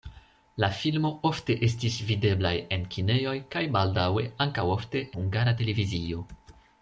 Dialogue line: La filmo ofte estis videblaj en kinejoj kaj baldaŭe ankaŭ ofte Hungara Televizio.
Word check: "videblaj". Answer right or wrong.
right